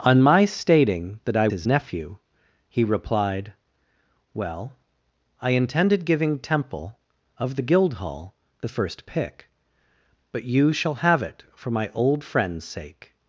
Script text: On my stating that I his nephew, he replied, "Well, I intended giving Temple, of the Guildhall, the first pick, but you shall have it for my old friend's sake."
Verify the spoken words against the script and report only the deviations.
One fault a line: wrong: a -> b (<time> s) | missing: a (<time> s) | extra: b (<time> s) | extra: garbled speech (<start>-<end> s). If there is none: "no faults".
no faults